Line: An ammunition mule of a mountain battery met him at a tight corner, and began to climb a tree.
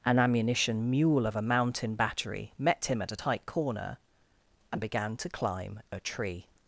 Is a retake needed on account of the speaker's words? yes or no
no